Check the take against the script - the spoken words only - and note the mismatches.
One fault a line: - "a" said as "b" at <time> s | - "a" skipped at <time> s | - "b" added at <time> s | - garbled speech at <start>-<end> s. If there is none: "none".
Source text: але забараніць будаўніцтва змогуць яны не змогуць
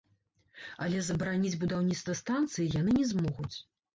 - "змогуць" said as "станцыі" at 2.2 s